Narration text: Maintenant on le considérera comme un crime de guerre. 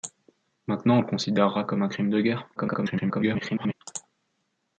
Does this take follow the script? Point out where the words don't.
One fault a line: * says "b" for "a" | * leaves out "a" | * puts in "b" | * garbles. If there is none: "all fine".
* garbles